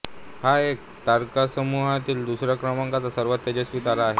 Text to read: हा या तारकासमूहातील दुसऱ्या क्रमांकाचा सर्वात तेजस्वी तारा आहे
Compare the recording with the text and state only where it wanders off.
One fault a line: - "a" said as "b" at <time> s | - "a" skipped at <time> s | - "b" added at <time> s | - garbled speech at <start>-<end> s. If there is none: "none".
none